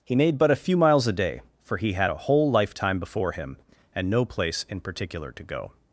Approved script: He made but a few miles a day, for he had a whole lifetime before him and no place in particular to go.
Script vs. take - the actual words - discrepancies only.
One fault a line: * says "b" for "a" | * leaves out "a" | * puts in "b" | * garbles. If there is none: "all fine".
all fine